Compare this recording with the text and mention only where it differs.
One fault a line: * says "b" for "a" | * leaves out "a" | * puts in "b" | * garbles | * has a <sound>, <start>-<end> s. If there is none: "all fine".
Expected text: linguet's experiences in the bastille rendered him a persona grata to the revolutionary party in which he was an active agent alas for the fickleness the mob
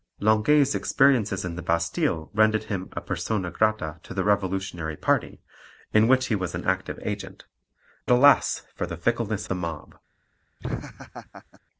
* has a laugh, 10.6-11.6 s